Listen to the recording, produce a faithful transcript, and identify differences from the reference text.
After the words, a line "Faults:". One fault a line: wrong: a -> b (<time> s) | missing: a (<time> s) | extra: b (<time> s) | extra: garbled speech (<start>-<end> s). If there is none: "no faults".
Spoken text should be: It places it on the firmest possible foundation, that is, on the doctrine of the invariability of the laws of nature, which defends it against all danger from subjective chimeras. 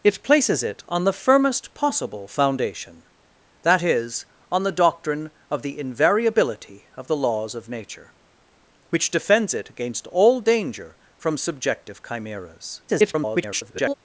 It places it on the firmest possible foundation, that is, on the doctrine of the invariability of the laws of nature, which defends it against all danger from subjective chimeras. [garbled]
Faults:
extra: garbled speech (12.9-13.9 s)